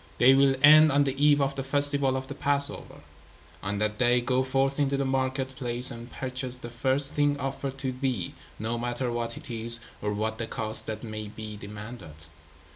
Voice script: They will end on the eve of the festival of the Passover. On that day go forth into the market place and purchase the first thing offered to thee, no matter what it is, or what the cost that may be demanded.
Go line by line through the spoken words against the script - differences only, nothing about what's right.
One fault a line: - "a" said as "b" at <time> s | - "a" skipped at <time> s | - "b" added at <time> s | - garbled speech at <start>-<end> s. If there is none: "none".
none